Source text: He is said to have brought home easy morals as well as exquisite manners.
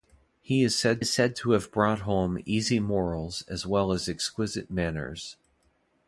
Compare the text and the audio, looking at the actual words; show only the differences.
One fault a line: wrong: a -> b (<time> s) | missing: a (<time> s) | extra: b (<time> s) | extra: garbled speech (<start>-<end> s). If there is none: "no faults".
extra: is said (1.0 s)